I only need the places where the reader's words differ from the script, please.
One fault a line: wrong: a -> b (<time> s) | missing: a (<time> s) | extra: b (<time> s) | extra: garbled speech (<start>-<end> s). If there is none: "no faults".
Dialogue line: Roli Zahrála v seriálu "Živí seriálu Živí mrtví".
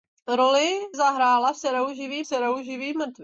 no faults